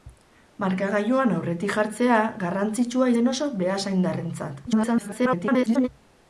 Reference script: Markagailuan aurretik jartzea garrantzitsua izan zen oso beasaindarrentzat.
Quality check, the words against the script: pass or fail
fail